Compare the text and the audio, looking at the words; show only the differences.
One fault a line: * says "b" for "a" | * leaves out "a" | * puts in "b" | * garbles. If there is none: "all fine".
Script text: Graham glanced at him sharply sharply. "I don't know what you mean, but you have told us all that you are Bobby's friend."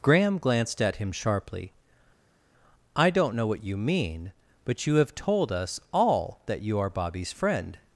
* leaves out "sharply"